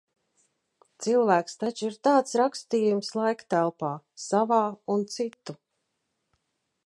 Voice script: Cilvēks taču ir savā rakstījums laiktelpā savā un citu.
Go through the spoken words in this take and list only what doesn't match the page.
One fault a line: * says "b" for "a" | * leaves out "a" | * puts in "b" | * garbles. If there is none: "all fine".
* says "tāds" for "savā"